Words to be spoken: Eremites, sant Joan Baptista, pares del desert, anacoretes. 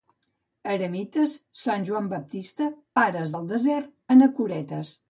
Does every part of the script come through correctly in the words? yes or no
yes